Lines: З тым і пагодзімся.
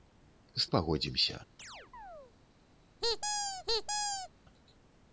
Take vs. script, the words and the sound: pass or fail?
fail